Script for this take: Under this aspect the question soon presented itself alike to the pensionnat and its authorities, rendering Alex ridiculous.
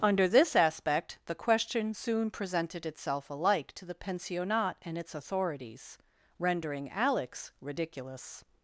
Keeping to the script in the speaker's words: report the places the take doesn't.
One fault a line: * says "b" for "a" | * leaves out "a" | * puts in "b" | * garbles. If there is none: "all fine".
all fine